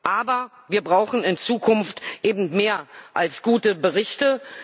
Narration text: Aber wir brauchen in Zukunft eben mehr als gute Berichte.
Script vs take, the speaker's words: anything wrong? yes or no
no